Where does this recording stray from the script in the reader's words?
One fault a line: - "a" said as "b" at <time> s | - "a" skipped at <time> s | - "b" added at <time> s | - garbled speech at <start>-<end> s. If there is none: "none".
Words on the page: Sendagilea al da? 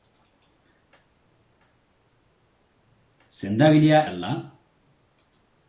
none